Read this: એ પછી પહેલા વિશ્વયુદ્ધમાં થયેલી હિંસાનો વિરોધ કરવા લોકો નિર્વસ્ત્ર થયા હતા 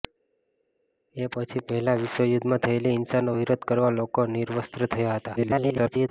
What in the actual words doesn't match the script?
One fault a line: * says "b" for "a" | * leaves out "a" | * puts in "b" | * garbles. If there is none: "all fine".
* garbles